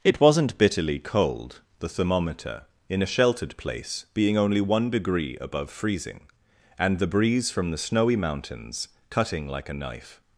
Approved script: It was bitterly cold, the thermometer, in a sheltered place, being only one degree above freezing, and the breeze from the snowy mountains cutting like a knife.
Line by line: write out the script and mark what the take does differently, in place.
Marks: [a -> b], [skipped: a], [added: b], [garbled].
It [was -> wasn't] bitterly cold, the thermometer, in a sheltered place, being only one degree above freezing, and the breeze from the snowy mountains cutting like a knife.